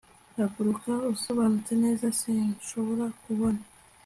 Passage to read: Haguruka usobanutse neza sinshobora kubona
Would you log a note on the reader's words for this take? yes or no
no